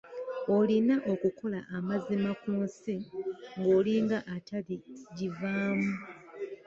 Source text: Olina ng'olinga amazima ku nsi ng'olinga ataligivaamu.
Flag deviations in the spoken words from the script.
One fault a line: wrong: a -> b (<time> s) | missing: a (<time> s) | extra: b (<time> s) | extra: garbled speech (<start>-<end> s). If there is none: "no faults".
wrong: ng'olinga -> okukola (1.1 s)